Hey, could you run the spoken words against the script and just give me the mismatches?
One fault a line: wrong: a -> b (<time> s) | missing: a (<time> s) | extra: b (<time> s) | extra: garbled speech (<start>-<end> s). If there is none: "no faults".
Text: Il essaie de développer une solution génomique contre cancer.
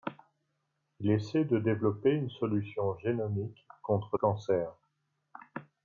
no faults